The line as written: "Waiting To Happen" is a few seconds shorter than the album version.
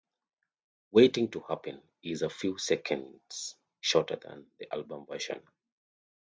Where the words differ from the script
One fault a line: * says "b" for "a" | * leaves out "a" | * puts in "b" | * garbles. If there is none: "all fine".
all fine